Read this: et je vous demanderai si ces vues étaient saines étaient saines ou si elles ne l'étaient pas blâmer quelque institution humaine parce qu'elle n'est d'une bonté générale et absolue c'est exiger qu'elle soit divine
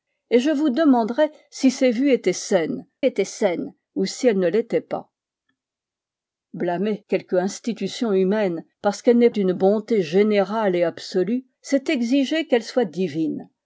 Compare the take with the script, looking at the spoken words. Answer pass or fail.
pass